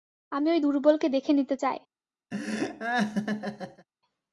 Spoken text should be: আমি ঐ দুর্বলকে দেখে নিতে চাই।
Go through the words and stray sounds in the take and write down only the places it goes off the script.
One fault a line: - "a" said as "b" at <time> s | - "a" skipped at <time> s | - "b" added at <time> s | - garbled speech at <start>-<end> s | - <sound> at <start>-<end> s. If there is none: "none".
- laugh at 2.3-3.9 s